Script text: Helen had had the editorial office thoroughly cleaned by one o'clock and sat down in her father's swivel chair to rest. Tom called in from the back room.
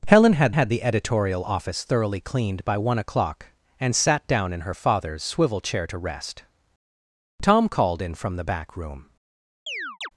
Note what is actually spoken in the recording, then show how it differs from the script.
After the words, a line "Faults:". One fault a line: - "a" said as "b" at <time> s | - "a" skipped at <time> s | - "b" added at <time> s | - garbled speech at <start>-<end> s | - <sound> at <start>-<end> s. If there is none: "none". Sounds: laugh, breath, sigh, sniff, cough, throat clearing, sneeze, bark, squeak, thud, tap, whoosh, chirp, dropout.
Helen had had the editorial office thoroughly cleaned by one o'clock and sat down in her father's swivel chair to rest. Tom called in from the back room.
Faults:
- chirp at 9.7-10.1 s